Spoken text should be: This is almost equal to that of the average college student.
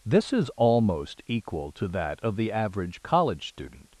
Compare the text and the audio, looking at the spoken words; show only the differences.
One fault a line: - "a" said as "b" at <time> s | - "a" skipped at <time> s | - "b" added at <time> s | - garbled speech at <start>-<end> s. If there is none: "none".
none